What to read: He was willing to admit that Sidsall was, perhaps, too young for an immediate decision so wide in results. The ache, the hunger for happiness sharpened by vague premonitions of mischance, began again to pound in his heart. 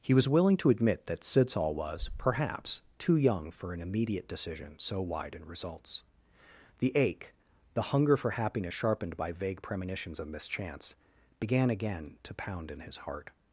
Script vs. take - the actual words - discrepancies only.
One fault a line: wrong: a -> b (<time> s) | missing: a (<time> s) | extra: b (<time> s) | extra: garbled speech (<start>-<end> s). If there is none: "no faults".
no faults